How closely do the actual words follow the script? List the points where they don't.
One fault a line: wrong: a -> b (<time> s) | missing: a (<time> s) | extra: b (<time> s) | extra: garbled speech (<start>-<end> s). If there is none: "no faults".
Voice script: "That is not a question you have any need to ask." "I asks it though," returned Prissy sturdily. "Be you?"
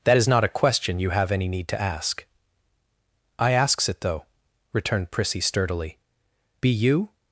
no faults